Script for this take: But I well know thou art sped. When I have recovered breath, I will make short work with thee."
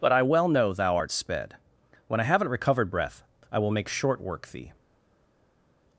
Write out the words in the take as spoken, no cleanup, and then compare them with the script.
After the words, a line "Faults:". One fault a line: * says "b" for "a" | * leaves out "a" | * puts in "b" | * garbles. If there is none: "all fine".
But I well know thou art sped. When I haven't recovered breath, I will make short work thee."
Faults:
* says "haven't" for "have"
* leaves out "with"